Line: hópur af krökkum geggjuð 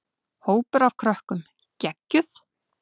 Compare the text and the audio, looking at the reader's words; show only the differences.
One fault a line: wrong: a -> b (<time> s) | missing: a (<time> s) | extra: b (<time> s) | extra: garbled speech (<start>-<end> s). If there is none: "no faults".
no faults